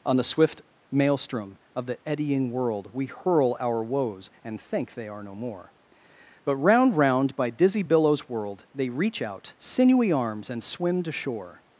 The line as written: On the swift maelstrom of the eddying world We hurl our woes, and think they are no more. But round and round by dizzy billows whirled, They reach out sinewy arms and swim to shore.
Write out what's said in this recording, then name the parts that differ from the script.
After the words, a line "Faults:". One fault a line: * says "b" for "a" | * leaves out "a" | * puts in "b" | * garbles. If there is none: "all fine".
On the swift maelstrom of the eddying world We hurl our woes, and think they are no more. But round round by dizzy billows whirled, They reach out sinewy arms and swim to shore.
Faults:
* leaves out "and"